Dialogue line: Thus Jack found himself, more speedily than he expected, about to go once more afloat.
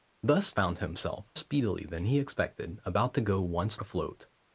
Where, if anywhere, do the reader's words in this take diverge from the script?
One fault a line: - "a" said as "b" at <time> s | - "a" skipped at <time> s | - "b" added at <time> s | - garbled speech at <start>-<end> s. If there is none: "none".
- "Jack" skipped at 0.5 s
- "more" skipped at 1.3 s
- "more" skipped at 3.8 s